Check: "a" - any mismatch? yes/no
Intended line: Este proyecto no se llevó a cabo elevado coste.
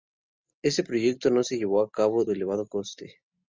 no